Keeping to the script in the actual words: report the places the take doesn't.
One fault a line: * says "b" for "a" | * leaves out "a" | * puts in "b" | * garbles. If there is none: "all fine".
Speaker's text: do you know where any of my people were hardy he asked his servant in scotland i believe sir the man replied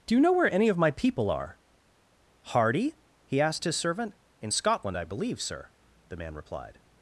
* says "are" for "were"